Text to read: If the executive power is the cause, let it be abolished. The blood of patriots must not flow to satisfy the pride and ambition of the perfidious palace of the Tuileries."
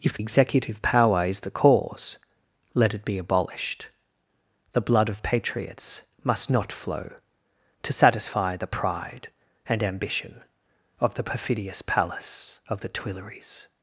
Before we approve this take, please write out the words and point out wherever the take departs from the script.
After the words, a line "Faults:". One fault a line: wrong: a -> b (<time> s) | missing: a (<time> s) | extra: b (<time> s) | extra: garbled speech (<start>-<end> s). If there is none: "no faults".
If executive power is the cause, let it be abolished. The blood of patriots must not flow to satisfy the pride and ambition of the perfidious palace of the Tuileries."
Faults:
missing: the (0.2 s)